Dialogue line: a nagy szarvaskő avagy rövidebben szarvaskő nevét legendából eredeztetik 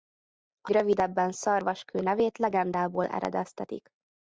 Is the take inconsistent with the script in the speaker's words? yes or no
yes